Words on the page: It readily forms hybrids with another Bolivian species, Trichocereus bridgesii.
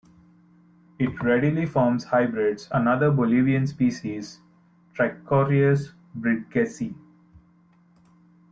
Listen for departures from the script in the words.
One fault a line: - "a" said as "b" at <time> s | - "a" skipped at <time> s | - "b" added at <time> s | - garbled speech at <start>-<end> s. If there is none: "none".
- "with" skipped at 2.7 s